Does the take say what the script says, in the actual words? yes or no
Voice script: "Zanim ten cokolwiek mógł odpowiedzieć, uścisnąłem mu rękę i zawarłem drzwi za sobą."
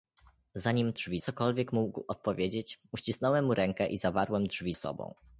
no